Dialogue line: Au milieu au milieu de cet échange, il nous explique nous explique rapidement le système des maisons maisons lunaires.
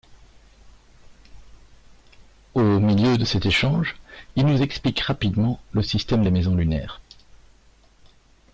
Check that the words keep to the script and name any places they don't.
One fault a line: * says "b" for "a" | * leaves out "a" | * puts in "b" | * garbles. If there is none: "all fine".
* leaves out "au milieu"
* leaves out "nous explique"
* leaves out "maisons"